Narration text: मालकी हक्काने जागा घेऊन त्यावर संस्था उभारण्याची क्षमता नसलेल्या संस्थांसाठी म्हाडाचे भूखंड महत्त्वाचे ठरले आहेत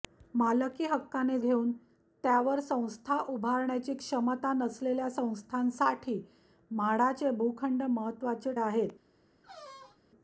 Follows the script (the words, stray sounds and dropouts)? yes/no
no